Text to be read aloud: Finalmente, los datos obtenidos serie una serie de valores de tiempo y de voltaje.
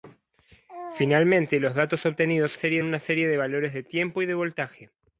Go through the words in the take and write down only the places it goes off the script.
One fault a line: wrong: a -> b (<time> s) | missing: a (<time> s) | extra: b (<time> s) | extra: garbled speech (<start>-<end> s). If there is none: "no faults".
no faults